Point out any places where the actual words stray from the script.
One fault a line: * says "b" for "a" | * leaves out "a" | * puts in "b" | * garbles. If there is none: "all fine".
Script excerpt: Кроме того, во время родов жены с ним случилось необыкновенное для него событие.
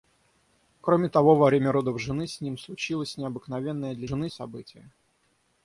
* says "жены" for "него"